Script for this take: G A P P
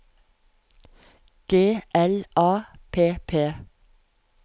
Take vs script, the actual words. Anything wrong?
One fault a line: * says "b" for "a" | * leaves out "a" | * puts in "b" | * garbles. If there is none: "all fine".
* puts in "L"